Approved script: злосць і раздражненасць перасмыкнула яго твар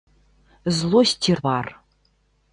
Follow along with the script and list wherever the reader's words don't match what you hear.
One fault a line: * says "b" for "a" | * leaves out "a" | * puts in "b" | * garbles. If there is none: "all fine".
* leaves out "раздражненасць перасмыкнула яго"